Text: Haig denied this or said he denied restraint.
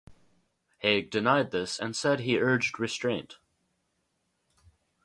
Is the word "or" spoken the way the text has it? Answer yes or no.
no